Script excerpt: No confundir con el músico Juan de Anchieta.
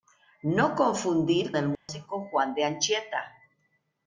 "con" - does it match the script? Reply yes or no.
no